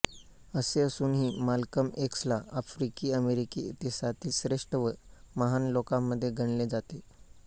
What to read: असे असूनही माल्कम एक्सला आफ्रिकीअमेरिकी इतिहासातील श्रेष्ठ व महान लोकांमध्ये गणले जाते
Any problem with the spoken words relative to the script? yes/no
no